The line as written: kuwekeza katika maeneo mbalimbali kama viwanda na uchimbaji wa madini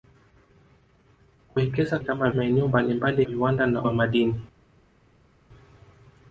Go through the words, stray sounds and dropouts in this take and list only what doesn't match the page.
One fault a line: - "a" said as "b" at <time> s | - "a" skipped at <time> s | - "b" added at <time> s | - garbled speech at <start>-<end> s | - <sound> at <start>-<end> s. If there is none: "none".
- "katika" said as "kama" at 2.0 s
- "kama" skipped at 3.2 s
- "uchimbaji" skipped at 3.8 s